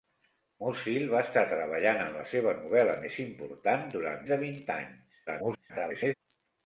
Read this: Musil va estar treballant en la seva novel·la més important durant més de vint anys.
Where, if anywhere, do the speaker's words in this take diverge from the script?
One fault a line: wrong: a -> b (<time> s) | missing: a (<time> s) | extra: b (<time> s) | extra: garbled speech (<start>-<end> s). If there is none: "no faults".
missing: més (4.2 s)
extra: garbled speech (5.3-6.1 s)